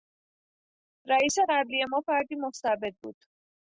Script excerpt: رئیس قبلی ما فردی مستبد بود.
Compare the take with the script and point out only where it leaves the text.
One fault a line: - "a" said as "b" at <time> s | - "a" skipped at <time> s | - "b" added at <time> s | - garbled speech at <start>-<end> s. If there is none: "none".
none